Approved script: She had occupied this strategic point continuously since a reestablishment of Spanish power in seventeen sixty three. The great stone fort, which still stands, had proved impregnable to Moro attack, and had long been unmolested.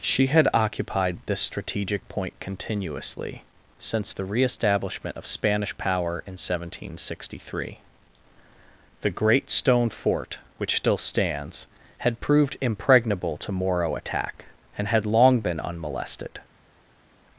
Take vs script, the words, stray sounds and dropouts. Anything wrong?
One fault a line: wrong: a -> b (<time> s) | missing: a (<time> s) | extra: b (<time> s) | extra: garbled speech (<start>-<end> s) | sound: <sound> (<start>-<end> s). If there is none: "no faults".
wrong: a -> the (4.1 s)